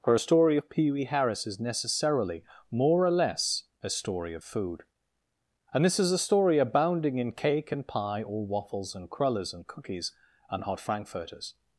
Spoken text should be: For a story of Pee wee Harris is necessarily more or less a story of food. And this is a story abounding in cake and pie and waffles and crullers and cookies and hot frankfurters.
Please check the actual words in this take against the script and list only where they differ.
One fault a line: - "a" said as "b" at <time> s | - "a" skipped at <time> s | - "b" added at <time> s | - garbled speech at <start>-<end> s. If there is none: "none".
- "and" said as "or" at 8.2 s